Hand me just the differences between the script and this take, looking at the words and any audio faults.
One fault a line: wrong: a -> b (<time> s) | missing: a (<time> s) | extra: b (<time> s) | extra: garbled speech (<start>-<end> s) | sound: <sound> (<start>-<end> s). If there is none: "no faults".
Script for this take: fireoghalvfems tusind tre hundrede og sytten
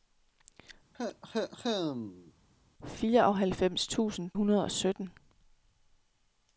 sound: cough (0.9-2.3 s)
missing: tre (4.3 s)